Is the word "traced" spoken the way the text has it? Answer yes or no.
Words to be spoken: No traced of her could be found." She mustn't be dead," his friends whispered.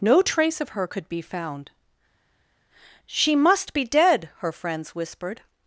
no